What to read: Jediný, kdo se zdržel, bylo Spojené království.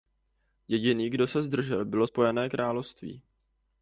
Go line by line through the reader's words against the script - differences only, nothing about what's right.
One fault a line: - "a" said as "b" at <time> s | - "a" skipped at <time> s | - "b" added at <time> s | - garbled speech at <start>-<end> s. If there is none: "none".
none